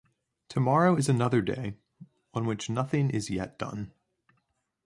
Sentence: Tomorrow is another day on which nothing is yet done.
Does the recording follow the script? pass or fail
pass